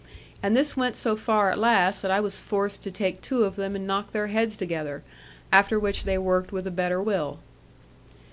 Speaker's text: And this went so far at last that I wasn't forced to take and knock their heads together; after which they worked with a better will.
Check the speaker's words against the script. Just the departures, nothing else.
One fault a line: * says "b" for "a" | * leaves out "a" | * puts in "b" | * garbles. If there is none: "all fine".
* says "was" for "wasn't"
* puts in "two of them"